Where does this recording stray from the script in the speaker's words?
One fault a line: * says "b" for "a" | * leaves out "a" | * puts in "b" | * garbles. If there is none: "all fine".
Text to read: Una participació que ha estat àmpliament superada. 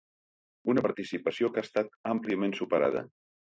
all fine